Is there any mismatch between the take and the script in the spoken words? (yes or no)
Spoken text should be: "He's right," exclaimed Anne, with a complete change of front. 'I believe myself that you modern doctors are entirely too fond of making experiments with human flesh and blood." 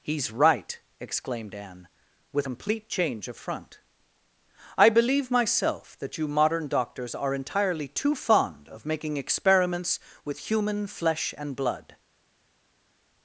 yes